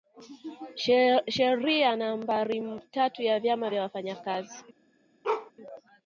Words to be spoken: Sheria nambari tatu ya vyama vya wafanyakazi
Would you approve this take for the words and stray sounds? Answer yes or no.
no